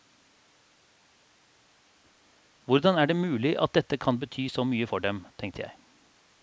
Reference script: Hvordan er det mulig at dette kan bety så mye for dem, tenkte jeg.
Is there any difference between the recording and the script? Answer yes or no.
no